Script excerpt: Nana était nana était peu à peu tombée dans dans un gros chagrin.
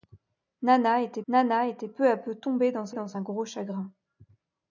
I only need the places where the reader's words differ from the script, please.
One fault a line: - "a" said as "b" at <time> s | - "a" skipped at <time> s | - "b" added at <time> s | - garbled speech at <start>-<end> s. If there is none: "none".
none